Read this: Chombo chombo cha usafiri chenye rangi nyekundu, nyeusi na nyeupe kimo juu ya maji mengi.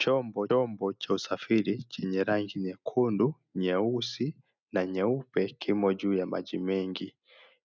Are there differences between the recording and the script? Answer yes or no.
no